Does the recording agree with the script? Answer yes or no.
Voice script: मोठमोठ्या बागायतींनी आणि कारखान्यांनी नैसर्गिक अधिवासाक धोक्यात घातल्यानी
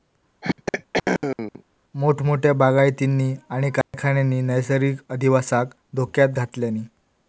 yes